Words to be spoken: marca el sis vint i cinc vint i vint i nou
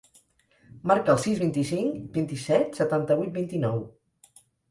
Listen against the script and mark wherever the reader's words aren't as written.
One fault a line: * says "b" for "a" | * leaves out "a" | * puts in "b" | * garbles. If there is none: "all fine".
* puts in "set setanta vuit"